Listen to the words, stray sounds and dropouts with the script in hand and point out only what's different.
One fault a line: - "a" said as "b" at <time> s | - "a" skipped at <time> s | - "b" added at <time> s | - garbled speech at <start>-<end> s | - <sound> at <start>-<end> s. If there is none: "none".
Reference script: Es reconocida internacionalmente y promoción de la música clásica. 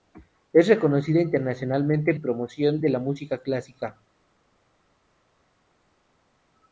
none